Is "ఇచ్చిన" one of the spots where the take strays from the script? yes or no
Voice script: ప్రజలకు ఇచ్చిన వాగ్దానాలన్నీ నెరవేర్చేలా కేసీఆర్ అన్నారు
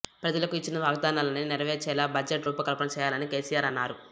no